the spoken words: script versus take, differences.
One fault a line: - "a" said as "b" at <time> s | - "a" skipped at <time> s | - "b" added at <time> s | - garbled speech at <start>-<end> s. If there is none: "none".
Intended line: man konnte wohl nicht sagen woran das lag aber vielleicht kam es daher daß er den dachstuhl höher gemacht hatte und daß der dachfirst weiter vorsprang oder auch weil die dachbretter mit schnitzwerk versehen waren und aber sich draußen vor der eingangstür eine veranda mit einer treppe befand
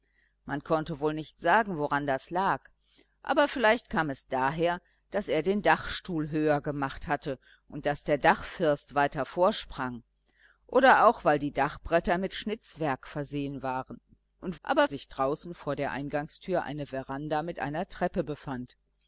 none